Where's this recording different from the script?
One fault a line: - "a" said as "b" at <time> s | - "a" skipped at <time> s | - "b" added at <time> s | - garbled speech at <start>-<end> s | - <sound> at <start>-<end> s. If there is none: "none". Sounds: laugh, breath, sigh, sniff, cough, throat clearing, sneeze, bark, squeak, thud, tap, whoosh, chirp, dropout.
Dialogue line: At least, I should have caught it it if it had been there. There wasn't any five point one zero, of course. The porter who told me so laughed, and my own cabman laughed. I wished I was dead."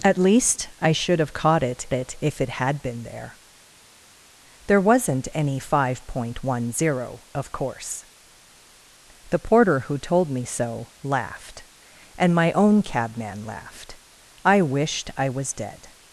none